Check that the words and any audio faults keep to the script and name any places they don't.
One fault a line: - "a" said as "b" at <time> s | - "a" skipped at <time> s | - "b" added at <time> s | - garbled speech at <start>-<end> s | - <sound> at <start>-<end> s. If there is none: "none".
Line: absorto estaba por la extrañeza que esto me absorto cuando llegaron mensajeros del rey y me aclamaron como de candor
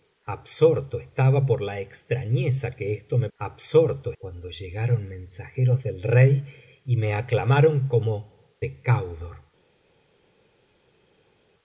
none